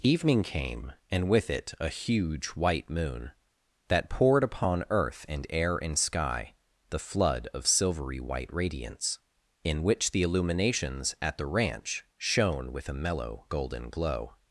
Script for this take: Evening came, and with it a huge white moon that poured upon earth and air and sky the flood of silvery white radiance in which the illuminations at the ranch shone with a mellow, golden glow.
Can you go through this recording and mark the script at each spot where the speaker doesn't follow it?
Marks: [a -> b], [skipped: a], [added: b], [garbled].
Evening came, and with it a huge white moon that poured upon earth and air and sky the flood of silvery white radiance in which the illuminations at the ranch shone with a mellow, golden glow.